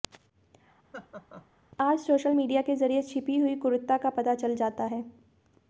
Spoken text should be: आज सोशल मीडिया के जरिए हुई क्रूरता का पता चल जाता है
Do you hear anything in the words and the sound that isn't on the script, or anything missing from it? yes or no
yes